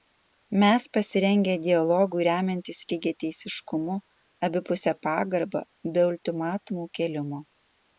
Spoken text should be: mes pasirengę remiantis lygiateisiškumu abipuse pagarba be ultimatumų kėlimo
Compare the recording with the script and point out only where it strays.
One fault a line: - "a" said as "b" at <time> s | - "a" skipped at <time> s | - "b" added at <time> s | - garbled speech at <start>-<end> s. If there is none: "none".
- "dialogui" added at 1.6 s